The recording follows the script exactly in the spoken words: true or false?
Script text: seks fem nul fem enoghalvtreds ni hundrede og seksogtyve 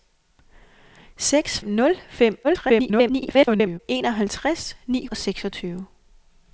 false